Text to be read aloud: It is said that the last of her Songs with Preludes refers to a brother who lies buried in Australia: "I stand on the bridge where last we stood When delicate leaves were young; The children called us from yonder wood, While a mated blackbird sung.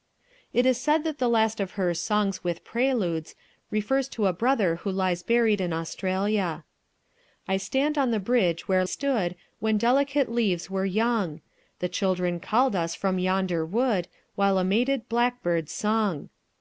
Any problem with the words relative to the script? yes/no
yes